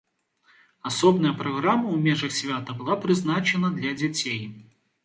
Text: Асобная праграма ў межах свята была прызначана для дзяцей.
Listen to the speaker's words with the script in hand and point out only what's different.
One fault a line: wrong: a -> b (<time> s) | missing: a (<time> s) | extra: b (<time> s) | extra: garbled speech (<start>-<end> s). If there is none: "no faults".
no faults